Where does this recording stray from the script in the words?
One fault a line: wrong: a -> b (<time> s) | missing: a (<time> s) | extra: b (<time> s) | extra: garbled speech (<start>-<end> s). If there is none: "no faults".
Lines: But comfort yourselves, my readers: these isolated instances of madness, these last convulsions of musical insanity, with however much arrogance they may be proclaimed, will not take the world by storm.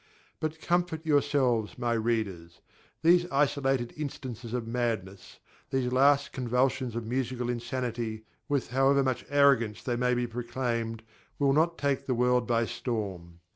no faults